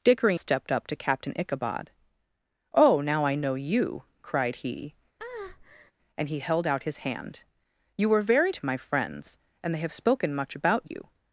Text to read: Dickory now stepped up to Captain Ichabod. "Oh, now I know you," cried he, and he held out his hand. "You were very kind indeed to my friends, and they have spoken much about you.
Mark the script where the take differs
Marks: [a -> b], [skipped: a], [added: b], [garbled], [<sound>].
Dickory [skipped: now] stepped up to Captain Ichabod. "Oh, now I know you," cried he, [breath] and he held out his hand. "You were very [skipped: kind indeed] to my friends, and they have spoken much about you.